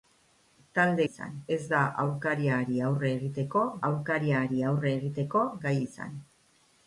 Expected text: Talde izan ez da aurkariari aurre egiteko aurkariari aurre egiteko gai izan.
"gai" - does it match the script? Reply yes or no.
yes